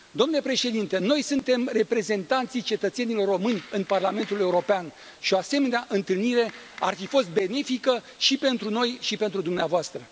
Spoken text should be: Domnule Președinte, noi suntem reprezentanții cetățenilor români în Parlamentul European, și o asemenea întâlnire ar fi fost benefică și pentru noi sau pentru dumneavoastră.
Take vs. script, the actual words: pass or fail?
fail